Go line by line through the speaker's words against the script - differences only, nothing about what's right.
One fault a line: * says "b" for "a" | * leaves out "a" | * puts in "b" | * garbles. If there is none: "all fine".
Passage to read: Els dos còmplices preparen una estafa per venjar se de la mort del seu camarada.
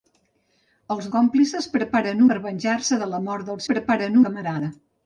* leaves out "dos"
* leaves out "una estafa"
* says "preparen" for "seu"